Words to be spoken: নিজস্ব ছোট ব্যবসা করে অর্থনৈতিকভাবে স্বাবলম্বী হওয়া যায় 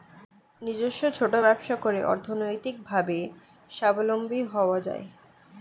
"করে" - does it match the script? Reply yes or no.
yes